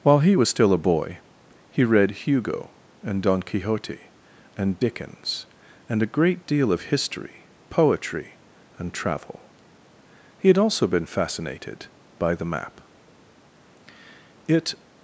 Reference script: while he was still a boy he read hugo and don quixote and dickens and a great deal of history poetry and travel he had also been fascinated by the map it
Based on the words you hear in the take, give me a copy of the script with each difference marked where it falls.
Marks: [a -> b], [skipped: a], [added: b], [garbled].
while he was still a boy he read hugo and don quixote and dickens and a great deal of history poetry and travel he had also been fascinated by the map it